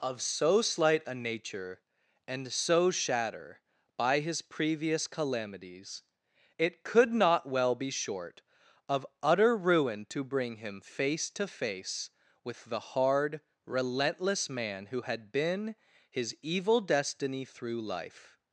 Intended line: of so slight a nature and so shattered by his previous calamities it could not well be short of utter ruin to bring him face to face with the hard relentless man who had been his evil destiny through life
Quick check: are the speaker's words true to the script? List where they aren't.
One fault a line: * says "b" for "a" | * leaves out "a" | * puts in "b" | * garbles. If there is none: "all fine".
* says "shatter" for "shattered"